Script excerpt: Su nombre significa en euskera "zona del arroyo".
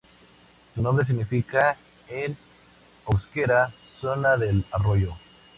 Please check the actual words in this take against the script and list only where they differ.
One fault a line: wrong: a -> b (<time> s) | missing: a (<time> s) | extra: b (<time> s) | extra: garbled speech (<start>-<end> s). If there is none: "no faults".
no faults